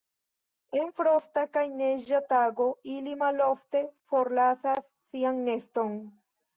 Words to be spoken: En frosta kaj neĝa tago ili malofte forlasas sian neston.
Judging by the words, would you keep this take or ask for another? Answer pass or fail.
pass